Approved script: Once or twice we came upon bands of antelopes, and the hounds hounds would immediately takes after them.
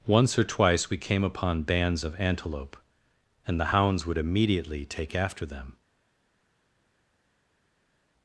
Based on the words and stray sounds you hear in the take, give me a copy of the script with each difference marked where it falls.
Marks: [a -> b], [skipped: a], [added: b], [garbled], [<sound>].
Once or twice we came upon bands of [antelopes, -> antelope] and the hounds [skipped: hounds] would immediately [takes -> take] after them.